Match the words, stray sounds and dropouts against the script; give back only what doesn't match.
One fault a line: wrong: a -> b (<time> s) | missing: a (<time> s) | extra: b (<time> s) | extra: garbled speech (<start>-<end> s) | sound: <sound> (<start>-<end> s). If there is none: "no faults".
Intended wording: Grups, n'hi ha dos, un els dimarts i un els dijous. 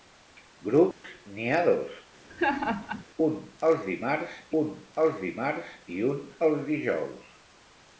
sound: dropout (0.9-1.0 s)
sound: laugh (2.3-3.0 s)
extra: un els dimarts (4.6 s)